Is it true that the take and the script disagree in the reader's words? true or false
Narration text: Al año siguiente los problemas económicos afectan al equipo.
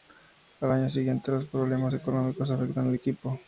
false